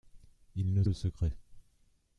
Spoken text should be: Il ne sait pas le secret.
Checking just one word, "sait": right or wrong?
wrong